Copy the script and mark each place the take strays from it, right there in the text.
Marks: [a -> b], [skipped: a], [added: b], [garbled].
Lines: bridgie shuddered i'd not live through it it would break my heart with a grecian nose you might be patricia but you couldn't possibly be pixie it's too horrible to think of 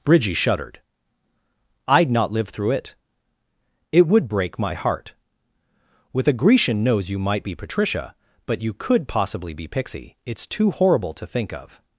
bridgie shuddered i'd not live through it it would break my heart with a grecian nose you might be patricia but you [couldn't -> could] possibly be pixie it's too horrible to think of